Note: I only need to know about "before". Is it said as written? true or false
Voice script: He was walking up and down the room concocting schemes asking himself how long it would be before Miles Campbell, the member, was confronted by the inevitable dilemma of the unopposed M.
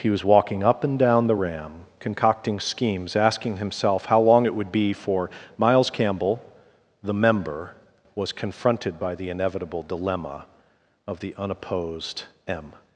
false